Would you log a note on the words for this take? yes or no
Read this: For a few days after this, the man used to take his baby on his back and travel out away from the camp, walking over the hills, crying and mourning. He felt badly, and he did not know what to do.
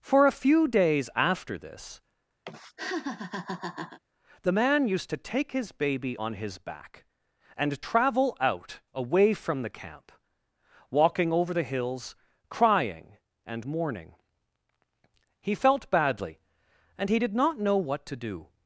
no